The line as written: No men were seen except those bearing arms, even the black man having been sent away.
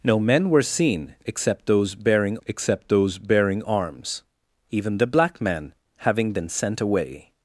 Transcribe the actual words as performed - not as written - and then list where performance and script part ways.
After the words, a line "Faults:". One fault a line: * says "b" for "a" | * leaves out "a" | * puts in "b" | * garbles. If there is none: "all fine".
No men were seen except those bearing except those bearing arms, even the black man having been sent away.
Faults:
* puts in "except those bearing"